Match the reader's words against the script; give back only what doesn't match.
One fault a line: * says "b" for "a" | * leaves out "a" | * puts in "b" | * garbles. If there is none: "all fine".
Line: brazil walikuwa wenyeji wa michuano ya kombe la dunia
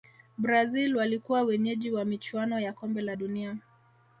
all fine